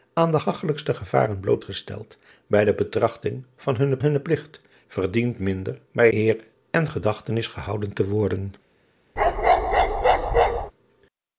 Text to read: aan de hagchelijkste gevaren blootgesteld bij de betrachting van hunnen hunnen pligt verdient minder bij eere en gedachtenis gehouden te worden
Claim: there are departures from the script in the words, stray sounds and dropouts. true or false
true